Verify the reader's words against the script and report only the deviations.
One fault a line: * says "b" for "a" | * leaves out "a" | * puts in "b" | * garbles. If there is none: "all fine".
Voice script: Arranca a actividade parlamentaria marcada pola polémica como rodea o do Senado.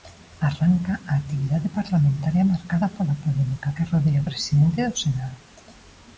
* says "que" for "como"
* puts in "presidente"